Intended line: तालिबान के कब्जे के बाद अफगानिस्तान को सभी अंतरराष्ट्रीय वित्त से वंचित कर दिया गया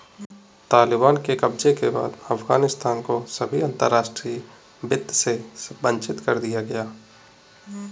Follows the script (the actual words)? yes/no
yes